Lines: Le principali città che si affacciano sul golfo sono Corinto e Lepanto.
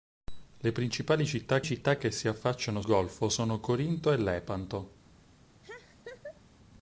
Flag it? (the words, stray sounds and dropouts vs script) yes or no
yes